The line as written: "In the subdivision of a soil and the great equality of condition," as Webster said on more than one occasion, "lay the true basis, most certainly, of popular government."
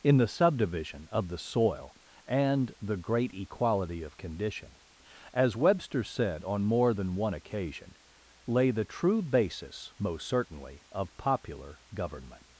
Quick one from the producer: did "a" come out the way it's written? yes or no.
no